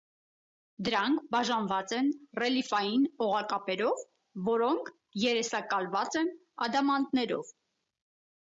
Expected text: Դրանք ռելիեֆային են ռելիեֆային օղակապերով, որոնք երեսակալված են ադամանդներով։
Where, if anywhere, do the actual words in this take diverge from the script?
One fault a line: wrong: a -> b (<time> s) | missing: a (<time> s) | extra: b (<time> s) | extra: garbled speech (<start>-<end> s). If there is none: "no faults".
wrong: ռելիեֆային -> բաժանված (1.4 s)